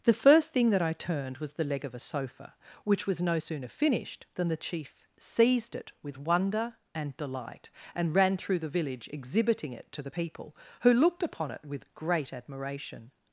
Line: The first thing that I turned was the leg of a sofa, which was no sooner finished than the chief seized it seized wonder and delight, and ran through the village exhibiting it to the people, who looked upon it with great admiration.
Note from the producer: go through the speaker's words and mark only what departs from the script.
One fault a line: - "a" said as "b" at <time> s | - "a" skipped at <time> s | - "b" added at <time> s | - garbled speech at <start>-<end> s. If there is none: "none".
- "seized" said as "with" at 6.0 s